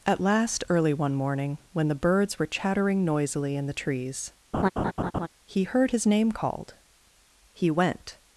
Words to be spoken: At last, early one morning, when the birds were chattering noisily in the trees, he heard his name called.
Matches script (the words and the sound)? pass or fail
fail